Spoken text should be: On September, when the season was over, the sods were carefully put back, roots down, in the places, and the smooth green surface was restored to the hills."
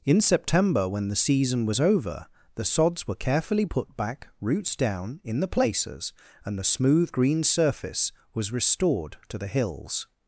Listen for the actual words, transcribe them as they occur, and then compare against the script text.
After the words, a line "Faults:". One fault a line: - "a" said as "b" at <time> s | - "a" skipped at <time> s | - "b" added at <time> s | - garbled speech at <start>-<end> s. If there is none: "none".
In September, when the season was over, the sods were carefully put back, roots down, in the places, and the smooth green surface was restored to the hills."
Faults:
- "On" said as "In" at 0.0 s